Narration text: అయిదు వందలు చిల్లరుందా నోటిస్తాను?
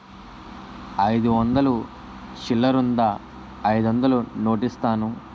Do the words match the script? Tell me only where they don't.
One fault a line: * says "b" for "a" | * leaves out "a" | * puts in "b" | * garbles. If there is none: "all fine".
* puts in "అయిదొందలు"